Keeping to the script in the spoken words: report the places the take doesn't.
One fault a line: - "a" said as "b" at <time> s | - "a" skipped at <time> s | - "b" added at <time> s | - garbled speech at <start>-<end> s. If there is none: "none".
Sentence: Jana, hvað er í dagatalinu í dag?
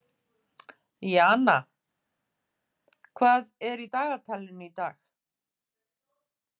none